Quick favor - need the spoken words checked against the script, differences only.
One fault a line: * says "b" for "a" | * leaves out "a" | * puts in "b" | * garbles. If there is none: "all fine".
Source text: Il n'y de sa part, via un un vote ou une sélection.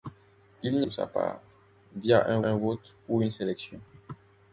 all fine